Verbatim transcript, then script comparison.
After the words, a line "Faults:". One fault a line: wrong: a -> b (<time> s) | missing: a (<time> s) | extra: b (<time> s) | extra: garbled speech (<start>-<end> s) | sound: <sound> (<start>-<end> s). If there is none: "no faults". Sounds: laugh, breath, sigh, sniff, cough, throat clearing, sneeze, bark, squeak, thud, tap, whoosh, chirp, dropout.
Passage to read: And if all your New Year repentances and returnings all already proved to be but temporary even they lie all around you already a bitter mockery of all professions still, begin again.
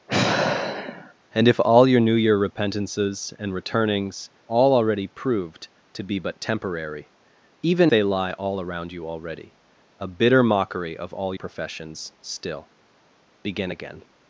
And if all your New Year repentances and returnings all already proved to be but temporary even they lie all around you already a bitter mockery of all professions still, begin again.
Faults:
sound: sigh (0.1-1.1 s)